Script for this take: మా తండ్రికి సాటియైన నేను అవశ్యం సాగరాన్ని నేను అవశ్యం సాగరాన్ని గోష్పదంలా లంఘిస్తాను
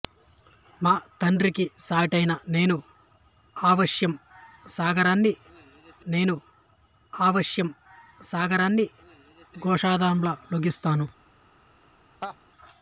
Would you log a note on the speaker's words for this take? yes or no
no